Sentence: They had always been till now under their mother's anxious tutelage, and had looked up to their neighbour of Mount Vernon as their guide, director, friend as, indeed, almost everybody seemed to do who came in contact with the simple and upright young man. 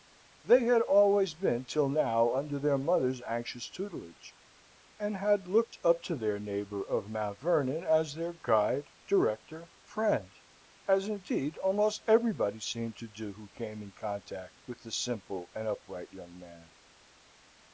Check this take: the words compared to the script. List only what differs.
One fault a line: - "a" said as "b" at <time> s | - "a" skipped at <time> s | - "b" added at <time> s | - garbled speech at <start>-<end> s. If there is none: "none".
none